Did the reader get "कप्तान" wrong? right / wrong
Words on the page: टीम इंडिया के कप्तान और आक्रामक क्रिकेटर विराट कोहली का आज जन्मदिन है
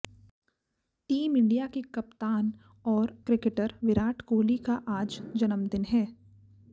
right